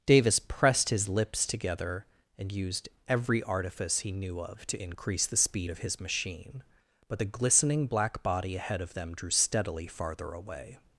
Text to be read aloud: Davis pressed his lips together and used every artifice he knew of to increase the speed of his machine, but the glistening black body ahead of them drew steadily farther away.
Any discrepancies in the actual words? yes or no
no